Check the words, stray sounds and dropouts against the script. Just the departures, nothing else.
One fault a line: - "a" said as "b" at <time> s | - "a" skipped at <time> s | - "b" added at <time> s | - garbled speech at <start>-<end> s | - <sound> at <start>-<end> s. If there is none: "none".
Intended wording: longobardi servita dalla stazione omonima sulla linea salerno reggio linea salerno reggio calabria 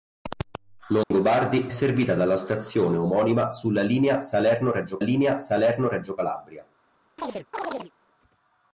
- dropout at 1.0-1.1 s
- chirp at 7.2-7.9 s